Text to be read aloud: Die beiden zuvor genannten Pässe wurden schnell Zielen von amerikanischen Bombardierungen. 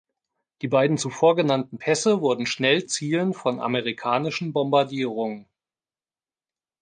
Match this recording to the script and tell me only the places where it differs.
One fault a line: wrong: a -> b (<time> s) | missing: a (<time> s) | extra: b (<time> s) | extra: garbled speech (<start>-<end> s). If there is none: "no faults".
no faults